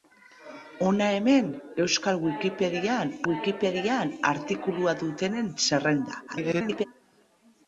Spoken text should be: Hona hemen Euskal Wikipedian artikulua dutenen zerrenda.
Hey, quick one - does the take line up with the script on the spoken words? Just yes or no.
no